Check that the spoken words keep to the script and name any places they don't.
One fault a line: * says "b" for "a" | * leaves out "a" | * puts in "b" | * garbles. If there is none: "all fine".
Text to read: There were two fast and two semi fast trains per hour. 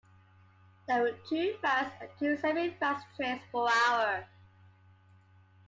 all fine